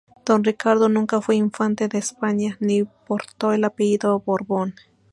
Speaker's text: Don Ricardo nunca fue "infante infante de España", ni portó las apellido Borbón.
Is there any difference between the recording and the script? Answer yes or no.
yes